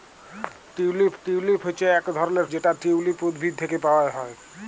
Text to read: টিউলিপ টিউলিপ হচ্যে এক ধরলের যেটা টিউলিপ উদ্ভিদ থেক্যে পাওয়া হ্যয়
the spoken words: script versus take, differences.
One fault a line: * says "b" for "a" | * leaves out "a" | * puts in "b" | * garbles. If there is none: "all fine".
all fine